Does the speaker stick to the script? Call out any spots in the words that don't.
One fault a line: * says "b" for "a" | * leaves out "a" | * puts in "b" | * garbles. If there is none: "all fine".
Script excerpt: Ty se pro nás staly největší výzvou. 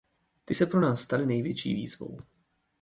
all fine